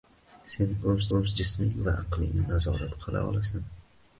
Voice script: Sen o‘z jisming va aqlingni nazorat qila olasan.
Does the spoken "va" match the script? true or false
true